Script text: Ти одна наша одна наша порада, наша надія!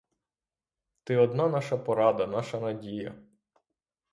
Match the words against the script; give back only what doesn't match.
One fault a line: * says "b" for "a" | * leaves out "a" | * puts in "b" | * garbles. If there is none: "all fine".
* leaves out "одна наша"